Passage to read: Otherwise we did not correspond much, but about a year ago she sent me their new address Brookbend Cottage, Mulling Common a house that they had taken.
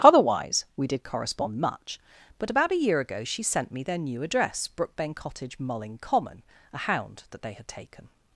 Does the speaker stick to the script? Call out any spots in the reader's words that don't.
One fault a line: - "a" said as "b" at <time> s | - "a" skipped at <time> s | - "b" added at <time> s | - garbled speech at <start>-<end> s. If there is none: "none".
- "not" skipped at 1.0 s
- "house" said as "hound" at 6.8 s